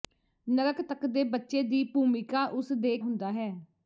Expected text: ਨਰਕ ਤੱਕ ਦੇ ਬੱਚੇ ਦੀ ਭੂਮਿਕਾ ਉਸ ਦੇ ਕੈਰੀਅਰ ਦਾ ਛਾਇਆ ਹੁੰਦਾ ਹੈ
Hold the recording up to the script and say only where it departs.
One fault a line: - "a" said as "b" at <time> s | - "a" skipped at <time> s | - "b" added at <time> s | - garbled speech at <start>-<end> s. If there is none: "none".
- "ਕੈਰੀਅਰ ਦਾ ਛਾਇਆ" skipped at 3.0 s